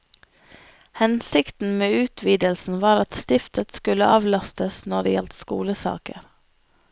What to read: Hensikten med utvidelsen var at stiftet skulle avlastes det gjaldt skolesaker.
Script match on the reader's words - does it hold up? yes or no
no